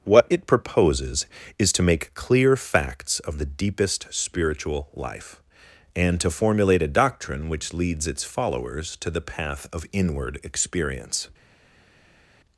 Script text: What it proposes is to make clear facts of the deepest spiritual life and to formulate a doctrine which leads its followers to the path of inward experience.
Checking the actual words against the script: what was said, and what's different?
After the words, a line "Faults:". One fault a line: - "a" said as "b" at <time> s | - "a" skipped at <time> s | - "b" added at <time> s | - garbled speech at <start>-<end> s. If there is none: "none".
What it proposes is to make clear facts of the deepest spiritual life and to formulate a doctrine which leads its followers to the path of inward experience.
Faults:
none